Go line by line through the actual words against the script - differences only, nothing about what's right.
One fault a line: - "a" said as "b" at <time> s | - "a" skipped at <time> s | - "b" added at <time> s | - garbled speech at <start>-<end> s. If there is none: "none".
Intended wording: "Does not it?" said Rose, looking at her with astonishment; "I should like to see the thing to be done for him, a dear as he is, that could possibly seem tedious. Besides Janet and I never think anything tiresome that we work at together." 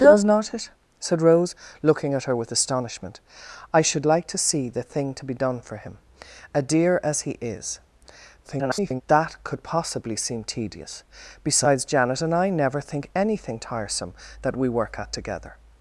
- garbled speech at 8.4-9.0 s